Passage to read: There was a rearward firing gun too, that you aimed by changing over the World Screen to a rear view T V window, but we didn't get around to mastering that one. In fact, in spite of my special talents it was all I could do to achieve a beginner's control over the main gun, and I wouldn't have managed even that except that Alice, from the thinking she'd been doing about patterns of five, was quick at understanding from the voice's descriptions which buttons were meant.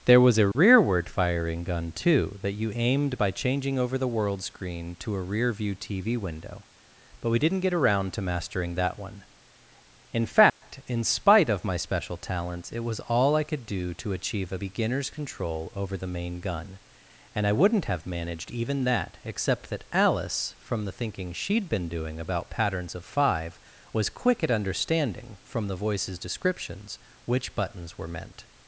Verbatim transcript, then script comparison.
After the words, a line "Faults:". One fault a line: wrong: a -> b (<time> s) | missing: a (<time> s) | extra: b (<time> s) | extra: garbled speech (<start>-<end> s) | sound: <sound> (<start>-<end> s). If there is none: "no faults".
There was a rearward firing gun too, that you aimed by changing over the World Screen to a rear view T V window, but we didn't get around to mastering that one. In fact, in spite of my special talents it was all I could do to achieve a beginner's control over the main gun, and I wouldn't have managed even that except that Alice, from the thinking she'd been doing about patterns of five, was quick at understanding from the voice's descriptions which buttons were meant.
Faults:
sound: dropout (0.5-0.5 s)
sound: dropout (10.5-10.6 s)